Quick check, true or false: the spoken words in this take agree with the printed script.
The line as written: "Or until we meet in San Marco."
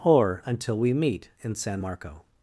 true